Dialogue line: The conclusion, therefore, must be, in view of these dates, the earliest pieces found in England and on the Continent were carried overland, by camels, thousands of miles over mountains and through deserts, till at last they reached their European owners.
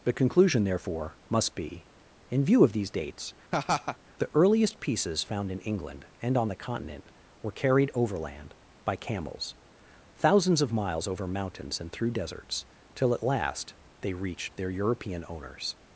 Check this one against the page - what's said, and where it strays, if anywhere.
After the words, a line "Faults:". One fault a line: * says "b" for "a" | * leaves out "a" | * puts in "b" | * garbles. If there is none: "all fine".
The conclusion, therefore, must be, in view of these dates, the earliest pieces found in England and on the Continent were carried overland, by camels, thousands of miles over mountains and through deserts, till at last they reached their European owners.
Faults:
all fine